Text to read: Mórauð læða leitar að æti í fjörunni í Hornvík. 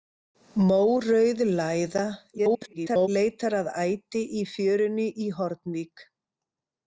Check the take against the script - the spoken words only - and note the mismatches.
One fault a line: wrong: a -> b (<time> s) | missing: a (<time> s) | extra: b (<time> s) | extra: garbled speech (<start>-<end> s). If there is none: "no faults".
extra: garbled speech (2.4-3.1 s)